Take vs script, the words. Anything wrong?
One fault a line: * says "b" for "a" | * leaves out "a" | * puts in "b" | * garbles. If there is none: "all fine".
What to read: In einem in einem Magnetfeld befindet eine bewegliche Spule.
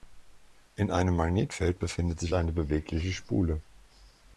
* leaves out "in einem"
* puts in "sich"